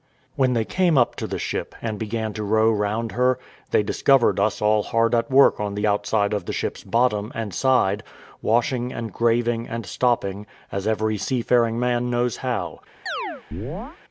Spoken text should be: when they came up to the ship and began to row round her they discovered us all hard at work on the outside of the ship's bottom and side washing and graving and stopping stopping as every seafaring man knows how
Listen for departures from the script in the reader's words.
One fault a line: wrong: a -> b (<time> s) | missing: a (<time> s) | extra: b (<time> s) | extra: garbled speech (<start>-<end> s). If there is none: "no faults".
missing: stopping (10.5 s)